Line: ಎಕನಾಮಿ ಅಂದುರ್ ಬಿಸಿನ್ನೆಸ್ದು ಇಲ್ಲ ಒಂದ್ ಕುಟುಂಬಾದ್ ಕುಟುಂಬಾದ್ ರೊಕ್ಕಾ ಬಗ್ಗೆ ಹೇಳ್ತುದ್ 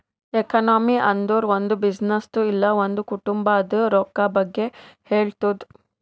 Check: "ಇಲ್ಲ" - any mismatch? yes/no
no